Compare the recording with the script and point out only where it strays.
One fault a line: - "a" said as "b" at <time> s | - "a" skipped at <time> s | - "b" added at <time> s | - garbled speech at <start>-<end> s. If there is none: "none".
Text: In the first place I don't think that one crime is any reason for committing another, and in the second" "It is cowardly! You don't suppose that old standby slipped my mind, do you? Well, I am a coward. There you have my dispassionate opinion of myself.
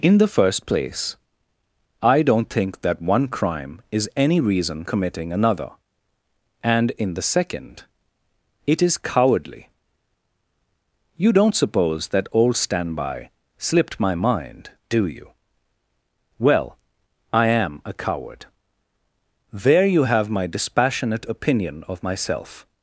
- "for" skipped at 4.8 s